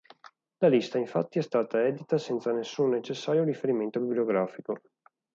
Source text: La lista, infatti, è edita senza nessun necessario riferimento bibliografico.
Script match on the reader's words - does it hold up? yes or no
no